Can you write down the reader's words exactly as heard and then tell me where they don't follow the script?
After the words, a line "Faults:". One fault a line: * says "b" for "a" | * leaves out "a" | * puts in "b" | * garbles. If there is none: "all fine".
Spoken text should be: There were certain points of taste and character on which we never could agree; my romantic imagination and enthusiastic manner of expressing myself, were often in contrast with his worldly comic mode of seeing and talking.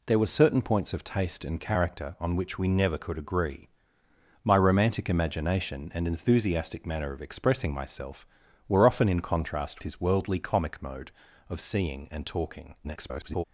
There were certain points of taste and character on which we never could agree; my romantic imagination and enthusiastic manner of expressing myself, were often in contrast his worldly comic mode of seeing and talking. [garbled]
Faults:
* leaves out "with"
* garbles